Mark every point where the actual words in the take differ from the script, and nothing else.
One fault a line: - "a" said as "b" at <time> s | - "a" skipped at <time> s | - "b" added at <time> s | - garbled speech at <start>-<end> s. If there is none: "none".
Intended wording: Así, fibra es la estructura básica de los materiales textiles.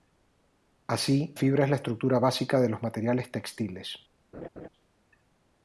none